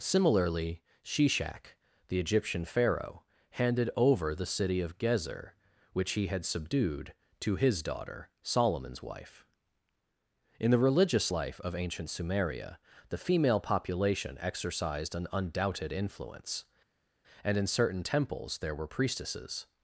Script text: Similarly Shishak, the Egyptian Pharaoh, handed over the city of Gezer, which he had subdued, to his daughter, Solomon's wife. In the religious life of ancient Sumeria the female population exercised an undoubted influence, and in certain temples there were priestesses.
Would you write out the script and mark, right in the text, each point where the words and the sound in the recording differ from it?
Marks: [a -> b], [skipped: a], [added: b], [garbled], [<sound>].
Similarly Shishak, the Egyptian Pharaoh, handed over the city of Gezer, which he had subdued, to his daughter, Solomon's wife. In the religious life of ancient Sumeria the female population exercised an undoubted influence, and in certain temples there were priestesses.